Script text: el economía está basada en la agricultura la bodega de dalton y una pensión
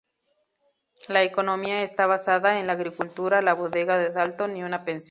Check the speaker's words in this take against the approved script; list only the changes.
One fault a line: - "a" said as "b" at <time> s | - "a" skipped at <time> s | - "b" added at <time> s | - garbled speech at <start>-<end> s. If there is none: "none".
- "el" said as "la" at 1.1 s